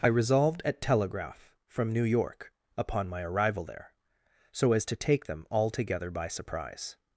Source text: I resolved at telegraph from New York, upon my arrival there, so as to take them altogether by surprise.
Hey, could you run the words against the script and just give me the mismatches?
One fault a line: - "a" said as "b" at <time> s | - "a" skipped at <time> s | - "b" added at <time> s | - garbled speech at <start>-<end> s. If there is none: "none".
none